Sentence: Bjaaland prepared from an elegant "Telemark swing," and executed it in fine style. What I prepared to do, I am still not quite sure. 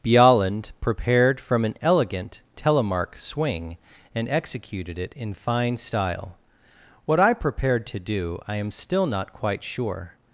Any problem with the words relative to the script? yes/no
no